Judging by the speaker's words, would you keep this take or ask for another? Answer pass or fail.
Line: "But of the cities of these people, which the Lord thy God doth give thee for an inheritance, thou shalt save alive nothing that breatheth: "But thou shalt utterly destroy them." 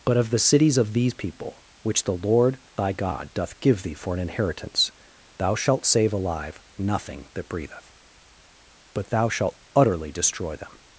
pass